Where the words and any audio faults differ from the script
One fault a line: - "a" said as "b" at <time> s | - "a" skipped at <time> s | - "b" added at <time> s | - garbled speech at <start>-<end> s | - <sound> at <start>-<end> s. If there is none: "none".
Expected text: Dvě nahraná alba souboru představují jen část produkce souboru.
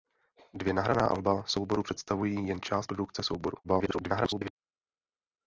- garbled speech at 3.6-4.5 s